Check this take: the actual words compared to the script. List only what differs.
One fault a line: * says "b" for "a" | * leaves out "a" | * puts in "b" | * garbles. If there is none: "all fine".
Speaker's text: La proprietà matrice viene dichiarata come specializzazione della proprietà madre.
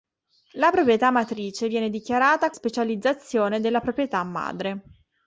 * leaves out "come"